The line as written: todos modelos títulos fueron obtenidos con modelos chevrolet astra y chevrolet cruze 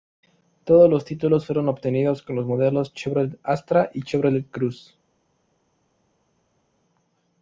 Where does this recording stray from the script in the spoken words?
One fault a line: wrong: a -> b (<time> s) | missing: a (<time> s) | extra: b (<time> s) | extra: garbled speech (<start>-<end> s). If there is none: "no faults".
wrong: modelos -> los (0.9 s)
extra: los (2.4 s)